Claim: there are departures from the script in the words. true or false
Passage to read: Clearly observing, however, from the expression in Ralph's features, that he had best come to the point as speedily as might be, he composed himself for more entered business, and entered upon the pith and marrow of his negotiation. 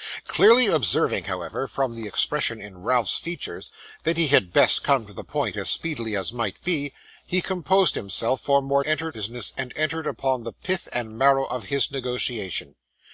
false